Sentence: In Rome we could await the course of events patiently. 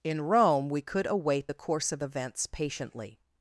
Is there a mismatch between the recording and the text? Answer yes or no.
no